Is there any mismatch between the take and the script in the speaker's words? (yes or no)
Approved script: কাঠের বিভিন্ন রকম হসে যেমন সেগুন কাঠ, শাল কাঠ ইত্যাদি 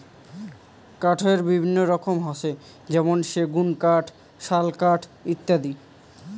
no